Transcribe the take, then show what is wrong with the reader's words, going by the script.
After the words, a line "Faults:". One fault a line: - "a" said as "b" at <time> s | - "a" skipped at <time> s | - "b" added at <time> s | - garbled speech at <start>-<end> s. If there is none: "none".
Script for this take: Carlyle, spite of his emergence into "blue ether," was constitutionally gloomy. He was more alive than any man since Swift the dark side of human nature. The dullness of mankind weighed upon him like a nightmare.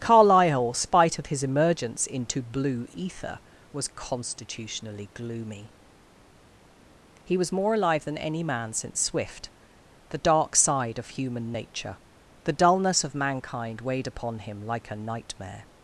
Carlyle, spite of his emergence into "blue ether," was constitutionally gloomy. He was more alive than any man since Swift the dark side of human nature. The dullness of mankind weighed upon him like a nightmare.
Faults:
none